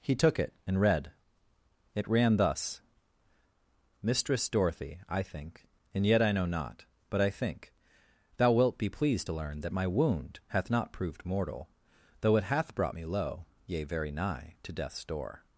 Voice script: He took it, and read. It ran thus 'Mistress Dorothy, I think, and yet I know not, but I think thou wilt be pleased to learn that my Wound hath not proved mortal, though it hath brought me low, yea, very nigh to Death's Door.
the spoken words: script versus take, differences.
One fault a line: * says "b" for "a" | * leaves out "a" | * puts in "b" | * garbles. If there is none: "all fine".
all fine